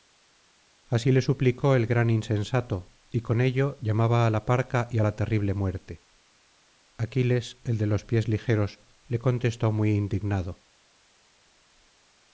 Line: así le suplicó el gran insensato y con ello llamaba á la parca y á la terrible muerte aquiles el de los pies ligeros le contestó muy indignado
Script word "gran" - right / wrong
right